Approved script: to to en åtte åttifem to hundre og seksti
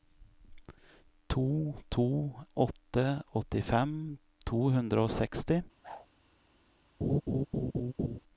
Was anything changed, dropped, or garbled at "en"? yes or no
yes